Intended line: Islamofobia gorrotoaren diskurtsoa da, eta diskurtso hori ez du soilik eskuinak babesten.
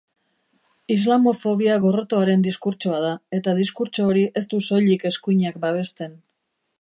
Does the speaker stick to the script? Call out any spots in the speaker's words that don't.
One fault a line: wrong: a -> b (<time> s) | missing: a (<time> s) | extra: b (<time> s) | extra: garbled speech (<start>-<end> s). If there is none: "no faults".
no faults